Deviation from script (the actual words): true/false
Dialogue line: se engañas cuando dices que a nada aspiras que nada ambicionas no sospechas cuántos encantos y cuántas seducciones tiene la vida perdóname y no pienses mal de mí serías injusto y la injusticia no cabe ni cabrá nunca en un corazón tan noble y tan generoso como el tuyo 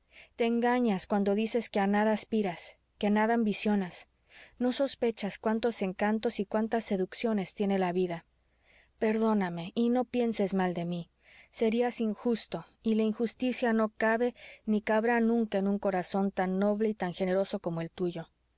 true